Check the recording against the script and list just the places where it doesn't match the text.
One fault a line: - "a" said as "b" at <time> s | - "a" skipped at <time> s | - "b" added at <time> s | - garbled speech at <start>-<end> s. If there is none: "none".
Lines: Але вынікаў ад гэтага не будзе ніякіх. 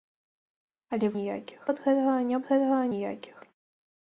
- "вынікаў" said as "ніякіх" at 1.2 s
- "будзе" said as "гэтага" at 2.5 s